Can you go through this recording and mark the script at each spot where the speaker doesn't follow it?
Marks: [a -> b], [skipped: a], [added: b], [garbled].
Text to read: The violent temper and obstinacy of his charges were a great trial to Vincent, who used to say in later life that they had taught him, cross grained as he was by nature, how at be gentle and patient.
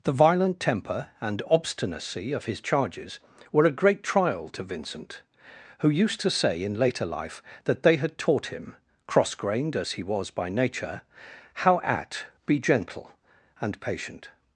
The violent temper and obstinacy of his charges were a great trial to Vincent, who used to say in later life that they had taught him, cross grained as he was by nature, how at be gentle and patient.